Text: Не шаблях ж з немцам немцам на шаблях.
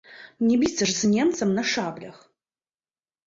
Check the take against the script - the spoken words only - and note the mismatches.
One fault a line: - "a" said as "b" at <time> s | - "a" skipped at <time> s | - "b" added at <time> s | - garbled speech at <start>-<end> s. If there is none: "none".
- "шаблях" said as "біцца" at 0.6 s
- "немцам" skipped at 1.5 s